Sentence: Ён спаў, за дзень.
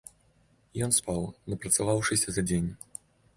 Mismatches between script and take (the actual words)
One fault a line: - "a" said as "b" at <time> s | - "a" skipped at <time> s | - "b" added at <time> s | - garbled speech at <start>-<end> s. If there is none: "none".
- "напрацаваўшыся" added at 1.5 s